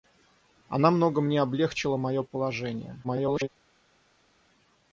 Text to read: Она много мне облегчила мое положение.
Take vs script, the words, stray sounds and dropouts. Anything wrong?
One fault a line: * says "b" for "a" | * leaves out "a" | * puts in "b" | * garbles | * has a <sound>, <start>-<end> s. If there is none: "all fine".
* garbles